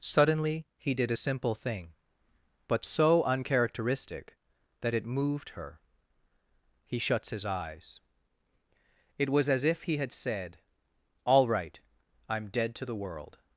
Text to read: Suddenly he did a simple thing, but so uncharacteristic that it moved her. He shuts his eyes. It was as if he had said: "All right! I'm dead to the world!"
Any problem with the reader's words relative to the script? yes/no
no